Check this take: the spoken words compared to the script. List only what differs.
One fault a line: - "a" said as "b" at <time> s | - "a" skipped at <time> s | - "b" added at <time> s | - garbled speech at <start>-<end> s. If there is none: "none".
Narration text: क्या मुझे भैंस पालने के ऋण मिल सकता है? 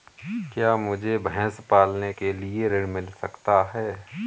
- "लिए" added at 2.3 s